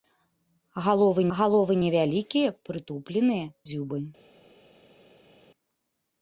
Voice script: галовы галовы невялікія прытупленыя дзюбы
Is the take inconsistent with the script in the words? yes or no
no